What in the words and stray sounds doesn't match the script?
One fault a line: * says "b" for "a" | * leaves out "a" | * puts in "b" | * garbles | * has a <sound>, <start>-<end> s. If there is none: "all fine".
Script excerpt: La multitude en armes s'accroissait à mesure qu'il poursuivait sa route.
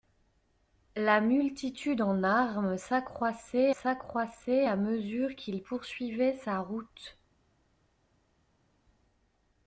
* puts in "s'accroissait"